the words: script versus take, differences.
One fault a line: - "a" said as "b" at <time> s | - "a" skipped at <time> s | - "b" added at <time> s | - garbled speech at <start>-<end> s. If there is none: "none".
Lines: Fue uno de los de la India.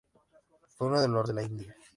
none